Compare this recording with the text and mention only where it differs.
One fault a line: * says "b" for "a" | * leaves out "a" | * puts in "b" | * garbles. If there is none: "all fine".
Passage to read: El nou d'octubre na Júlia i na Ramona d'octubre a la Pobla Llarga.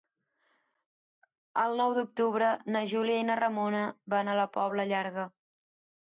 * says "van" for "d'octubre"